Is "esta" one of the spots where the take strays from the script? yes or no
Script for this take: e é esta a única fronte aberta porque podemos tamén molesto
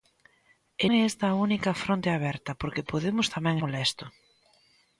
no